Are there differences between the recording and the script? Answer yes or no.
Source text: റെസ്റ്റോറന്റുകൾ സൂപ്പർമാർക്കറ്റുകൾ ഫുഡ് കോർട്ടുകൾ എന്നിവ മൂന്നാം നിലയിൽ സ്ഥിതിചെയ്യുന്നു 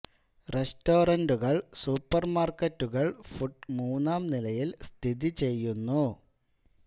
yes